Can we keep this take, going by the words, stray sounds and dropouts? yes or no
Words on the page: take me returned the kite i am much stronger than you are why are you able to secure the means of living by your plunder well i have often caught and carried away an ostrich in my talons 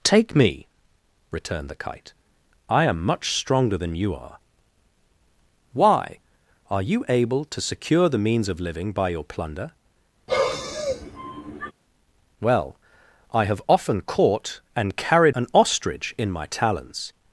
no